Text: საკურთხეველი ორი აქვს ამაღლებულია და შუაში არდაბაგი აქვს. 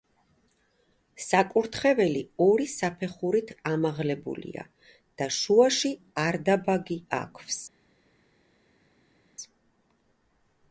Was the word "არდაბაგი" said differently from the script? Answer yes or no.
no